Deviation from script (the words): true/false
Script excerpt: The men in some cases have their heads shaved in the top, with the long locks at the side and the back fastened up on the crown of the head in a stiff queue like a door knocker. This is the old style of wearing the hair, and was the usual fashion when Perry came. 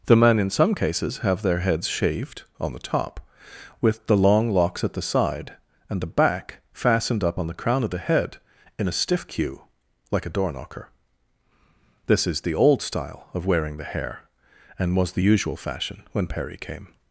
true